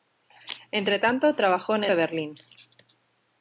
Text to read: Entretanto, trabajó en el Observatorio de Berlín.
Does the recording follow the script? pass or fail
fail